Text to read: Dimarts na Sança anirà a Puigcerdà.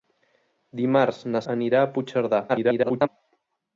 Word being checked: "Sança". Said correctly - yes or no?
no